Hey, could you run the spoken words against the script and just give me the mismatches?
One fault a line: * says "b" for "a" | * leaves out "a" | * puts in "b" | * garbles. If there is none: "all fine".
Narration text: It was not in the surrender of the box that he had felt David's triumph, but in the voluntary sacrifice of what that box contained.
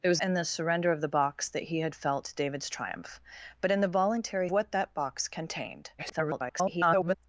* leaves out "not"
* leaves out "sacrifice of"
* garbles